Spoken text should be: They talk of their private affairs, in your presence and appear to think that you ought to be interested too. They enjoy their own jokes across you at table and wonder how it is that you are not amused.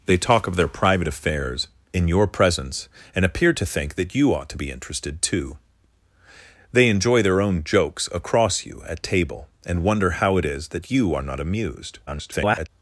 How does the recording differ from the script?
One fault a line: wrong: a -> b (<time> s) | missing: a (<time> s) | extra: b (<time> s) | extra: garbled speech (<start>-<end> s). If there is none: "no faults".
extra: garbled speech (12.1-12.7 s)